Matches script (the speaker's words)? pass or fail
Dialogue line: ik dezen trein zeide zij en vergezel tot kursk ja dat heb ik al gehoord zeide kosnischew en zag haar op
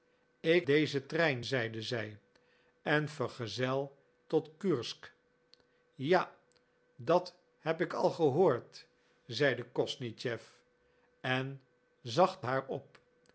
pass